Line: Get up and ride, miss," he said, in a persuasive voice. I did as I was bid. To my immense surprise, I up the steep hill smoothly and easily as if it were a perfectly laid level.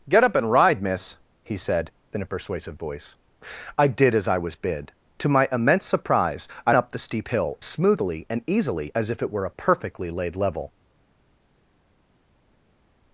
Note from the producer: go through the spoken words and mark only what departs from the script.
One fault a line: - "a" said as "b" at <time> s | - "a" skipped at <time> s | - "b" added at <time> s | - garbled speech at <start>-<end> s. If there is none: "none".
none